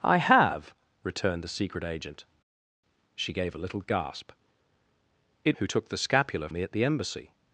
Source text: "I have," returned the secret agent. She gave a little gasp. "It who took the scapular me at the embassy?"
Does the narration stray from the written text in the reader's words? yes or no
no